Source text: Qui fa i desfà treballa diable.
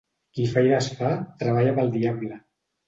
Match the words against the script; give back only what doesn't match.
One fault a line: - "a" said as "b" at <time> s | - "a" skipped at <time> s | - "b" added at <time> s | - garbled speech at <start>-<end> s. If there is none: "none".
- "pel" added at 1.8 s